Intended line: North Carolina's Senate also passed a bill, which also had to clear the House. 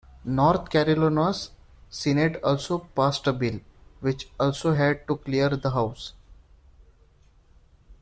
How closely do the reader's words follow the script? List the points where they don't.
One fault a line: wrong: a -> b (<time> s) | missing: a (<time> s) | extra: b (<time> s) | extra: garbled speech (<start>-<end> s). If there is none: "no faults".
no faults